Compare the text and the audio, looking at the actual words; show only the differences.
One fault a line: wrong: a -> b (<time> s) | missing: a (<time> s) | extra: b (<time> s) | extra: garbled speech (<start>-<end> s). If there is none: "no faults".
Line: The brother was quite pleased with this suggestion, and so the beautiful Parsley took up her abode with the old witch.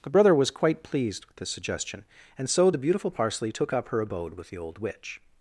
no faults